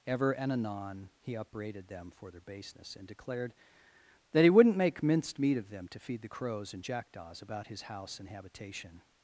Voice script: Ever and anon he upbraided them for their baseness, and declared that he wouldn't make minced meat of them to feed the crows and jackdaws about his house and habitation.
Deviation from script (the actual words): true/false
false